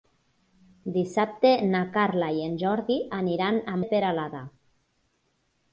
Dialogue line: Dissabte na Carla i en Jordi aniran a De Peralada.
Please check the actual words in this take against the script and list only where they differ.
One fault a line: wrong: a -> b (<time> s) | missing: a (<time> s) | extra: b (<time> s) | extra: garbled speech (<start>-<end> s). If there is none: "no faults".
no faults